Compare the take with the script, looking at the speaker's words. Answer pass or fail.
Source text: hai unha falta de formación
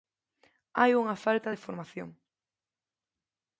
pass